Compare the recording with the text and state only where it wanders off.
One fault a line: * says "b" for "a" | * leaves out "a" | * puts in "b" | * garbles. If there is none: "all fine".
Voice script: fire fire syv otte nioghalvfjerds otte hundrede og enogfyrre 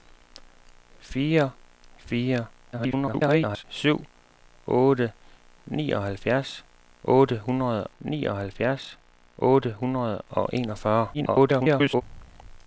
* garbles
* puts in "nioghalvfjerds otte hundrede"
* garbles